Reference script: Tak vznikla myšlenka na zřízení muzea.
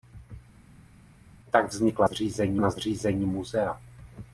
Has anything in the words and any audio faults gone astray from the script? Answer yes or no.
yes